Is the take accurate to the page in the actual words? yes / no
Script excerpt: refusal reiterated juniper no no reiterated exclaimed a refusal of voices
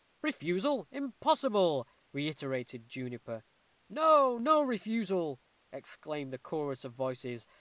no